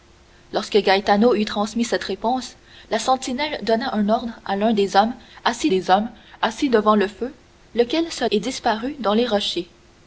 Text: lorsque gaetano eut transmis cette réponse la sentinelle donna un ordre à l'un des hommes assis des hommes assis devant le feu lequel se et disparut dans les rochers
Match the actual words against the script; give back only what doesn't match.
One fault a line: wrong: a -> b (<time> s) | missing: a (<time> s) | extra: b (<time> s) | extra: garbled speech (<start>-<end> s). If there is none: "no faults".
no faults